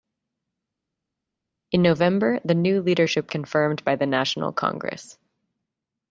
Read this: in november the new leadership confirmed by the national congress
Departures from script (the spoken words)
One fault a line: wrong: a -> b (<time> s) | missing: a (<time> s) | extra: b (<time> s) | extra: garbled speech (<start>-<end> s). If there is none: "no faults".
no faults